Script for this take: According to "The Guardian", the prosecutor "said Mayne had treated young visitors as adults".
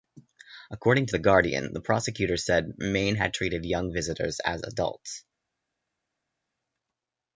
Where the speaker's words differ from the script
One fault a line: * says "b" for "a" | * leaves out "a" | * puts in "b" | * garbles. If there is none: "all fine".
all fine